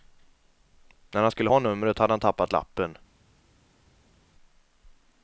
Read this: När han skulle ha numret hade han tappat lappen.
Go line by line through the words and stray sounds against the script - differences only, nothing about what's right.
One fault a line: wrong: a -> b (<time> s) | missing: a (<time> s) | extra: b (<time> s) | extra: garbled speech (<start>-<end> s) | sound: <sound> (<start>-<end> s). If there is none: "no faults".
no faults